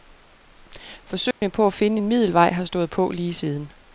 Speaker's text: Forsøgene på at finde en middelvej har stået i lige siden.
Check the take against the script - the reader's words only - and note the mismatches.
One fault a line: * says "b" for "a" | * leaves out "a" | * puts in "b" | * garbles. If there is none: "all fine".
* says "på" for "i"